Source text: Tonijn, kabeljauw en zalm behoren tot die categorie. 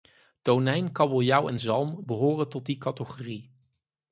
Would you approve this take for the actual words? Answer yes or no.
yes